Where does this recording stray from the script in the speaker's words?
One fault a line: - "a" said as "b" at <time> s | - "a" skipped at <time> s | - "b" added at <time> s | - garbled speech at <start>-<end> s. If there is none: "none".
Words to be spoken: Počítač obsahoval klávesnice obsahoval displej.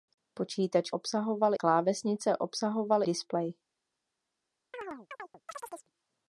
none